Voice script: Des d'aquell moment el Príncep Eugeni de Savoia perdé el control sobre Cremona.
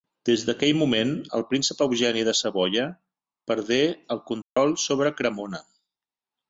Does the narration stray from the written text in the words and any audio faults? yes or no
yes